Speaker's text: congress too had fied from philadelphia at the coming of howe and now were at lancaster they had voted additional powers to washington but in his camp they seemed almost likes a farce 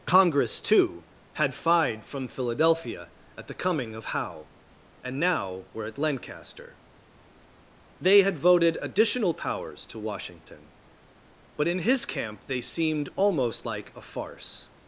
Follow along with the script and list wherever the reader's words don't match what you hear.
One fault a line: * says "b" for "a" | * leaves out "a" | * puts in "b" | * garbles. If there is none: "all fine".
* says "like" for "likes"